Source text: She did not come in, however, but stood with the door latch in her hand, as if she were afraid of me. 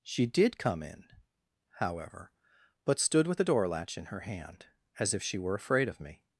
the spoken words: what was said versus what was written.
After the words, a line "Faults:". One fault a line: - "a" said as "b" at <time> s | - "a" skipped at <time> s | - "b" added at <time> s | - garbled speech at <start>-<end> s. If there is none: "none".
She did come in, however, but stood with the door latch in her hand, as if she were afraid of me.
Faults:
- "not" skipped at 0.6 s